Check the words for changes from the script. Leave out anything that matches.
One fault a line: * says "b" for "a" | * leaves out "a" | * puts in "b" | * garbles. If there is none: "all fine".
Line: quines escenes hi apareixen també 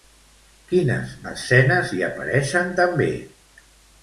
all fine